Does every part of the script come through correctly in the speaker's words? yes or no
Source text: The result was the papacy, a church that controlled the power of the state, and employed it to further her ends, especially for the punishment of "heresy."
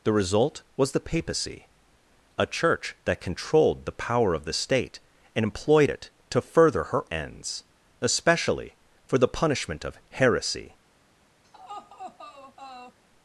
yes